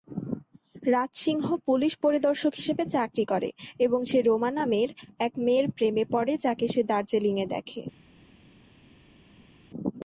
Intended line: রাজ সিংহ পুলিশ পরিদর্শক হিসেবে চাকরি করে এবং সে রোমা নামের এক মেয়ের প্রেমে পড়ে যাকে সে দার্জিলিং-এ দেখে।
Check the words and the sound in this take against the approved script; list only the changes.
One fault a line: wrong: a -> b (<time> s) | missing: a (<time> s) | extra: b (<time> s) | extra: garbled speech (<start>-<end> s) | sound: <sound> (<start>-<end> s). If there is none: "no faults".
no faults